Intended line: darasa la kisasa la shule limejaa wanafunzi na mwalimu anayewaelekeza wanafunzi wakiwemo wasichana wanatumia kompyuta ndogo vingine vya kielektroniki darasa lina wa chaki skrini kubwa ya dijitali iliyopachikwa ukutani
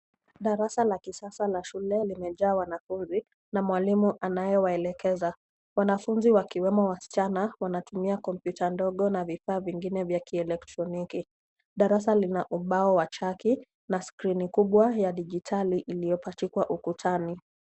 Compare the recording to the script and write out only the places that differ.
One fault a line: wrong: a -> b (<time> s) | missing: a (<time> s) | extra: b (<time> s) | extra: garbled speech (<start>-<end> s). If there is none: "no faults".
extra: na vifaa (9.1 s)
extra: ubao (12.5 s)
extra: na (13.9 s)